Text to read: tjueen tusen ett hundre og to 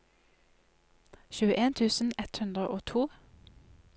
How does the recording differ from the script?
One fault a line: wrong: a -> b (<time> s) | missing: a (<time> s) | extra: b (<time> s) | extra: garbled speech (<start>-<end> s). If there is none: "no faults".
no faults